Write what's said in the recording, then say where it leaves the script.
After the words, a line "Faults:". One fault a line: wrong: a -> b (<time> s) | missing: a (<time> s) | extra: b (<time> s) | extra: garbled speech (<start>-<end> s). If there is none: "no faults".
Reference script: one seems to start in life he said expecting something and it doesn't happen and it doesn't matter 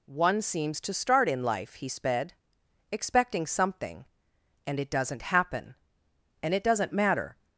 one seems to start in life he sped expecting something and it doesn't happen and it doesn't matter
Faults:
wrong: said -> sped (1.9 s)